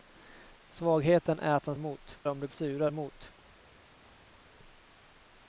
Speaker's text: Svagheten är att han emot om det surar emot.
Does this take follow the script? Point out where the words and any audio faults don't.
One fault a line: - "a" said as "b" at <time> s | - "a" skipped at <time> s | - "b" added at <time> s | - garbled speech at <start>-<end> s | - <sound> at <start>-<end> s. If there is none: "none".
none